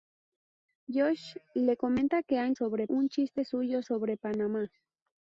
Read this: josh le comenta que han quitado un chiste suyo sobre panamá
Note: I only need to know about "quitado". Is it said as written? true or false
false